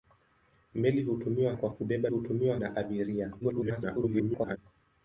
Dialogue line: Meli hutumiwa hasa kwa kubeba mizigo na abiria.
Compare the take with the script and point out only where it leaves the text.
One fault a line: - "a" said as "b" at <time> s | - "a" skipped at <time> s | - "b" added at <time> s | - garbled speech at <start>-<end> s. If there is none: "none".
- "hasa" skipped at 1.5 s
- "mizigo" said as "hutumiwa" at 2.1 s
- garbled speech at 3.4-4.6 s